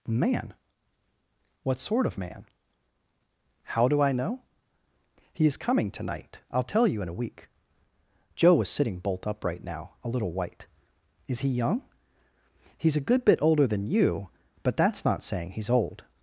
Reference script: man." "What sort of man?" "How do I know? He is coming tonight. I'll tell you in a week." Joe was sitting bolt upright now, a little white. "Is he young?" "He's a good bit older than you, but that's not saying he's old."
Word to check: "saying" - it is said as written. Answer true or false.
true